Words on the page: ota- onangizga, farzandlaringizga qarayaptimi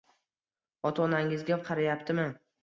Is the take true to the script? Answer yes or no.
no